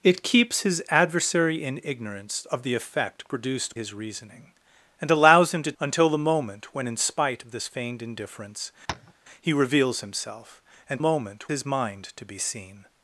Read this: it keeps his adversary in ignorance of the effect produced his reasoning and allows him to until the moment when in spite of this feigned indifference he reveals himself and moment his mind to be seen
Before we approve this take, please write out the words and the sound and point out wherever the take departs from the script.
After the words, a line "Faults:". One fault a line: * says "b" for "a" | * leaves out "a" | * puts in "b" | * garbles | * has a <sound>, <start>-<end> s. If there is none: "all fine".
it keeps his adversary in ignorance of the effect produced his reasoning and allows him to until the moment when in spite of this feigned indifference he reveals himself and moment his mind to be seen
Faults:
* has a tap, 8.9-9.1 s